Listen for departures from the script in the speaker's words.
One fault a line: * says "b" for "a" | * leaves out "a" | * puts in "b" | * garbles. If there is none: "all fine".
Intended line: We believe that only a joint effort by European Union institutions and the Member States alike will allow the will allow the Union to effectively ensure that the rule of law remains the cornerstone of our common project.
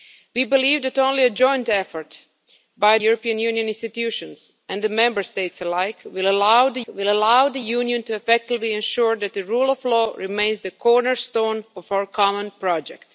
all fine